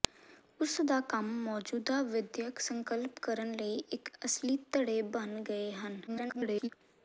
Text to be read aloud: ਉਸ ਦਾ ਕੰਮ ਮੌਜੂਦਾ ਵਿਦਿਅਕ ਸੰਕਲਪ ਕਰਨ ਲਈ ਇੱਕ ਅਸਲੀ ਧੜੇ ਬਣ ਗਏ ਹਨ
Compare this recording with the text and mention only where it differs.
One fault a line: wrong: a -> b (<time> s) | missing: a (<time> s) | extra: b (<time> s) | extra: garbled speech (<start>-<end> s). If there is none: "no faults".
extra: garbled speech (6.1-6.7 s)